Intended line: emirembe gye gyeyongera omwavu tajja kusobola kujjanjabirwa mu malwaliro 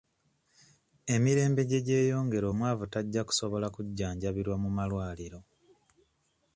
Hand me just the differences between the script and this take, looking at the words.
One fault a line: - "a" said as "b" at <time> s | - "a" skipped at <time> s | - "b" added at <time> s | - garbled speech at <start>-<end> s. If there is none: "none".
none